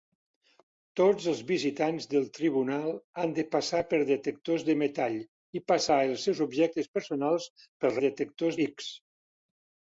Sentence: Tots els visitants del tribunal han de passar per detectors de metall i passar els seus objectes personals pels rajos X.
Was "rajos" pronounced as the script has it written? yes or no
no